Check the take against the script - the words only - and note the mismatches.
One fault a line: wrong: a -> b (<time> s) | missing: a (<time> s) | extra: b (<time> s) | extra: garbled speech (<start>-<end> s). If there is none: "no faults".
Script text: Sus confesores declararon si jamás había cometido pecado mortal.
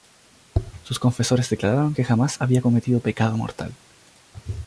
wrong: si -> que (1.9 s)